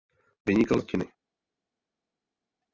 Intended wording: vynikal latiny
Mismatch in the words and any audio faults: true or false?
false